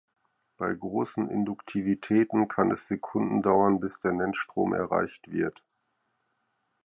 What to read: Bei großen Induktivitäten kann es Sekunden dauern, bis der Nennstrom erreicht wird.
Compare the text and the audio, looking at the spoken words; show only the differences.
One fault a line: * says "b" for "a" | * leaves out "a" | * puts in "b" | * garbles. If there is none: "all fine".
all fine